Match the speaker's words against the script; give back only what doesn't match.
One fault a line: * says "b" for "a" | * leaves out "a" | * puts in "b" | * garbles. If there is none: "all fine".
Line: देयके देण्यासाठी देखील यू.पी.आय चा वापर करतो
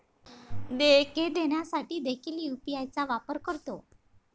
all fine